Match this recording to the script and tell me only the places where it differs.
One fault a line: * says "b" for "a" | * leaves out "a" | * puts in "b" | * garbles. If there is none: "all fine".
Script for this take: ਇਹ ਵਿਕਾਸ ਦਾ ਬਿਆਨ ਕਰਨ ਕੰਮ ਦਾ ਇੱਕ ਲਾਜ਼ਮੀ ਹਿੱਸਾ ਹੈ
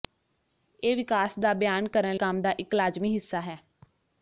all fine